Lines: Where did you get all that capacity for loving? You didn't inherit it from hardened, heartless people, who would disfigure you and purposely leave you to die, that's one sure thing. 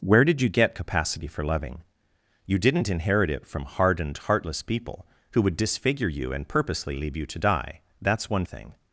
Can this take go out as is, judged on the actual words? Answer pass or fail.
fail